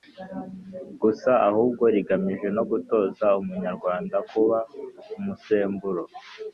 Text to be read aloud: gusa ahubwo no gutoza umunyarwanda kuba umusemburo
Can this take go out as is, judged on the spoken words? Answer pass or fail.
fail